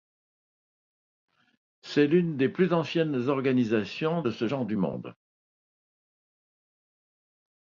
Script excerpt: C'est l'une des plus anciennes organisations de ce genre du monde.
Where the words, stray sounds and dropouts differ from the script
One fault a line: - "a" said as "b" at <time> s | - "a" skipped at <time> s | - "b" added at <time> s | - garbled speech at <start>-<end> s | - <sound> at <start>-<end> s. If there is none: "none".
none